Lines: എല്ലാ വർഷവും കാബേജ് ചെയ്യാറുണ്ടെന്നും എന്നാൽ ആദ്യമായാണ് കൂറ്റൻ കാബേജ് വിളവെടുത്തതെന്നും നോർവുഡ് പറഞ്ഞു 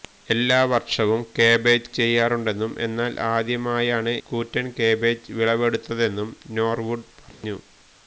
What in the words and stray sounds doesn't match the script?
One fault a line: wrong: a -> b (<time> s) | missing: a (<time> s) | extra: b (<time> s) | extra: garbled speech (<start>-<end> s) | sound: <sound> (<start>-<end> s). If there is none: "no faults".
sound: dropout (7.3-7.4 s)